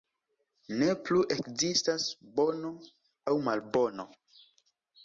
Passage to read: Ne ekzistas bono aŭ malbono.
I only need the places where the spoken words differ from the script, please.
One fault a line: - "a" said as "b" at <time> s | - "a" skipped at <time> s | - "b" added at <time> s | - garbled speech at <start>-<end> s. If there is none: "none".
- "plu" added at 1.1 s